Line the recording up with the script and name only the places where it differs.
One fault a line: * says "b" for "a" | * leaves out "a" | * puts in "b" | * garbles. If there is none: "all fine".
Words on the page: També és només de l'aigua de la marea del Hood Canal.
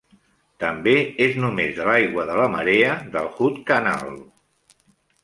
all fine